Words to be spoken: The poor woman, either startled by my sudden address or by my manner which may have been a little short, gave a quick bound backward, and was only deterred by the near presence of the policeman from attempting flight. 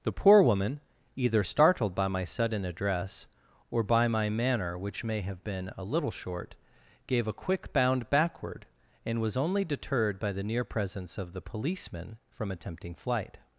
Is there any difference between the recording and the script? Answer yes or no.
no